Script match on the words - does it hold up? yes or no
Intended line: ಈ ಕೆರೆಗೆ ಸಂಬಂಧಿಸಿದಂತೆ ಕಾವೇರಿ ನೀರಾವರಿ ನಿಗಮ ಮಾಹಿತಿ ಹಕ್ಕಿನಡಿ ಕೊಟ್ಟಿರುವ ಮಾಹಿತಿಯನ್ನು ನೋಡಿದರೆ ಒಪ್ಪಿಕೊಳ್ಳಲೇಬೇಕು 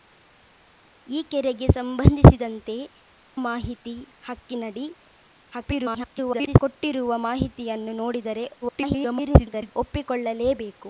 no